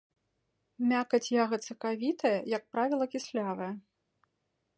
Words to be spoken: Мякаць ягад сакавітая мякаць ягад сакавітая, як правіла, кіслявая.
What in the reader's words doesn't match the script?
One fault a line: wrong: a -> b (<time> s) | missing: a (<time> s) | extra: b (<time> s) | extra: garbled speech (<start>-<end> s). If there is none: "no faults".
missing: мякаць ягад сакавітая (2.3 s)